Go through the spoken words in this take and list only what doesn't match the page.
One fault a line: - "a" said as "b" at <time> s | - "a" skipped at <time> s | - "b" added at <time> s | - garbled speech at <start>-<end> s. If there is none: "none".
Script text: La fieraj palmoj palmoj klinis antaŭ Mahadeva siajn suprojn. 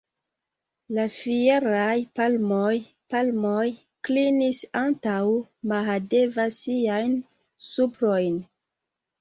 none